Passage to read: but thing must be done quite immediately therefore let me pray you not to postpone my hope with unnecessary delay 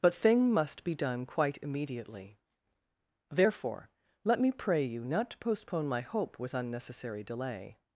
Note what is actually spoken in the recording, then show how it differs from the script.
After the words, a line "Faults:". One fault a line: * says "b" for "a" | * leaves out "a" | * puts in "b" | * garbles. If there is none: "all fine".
but thing must be done quite immediately therefore let me pray you not to postpone my hope with unnecessary delay
Faults:
all fine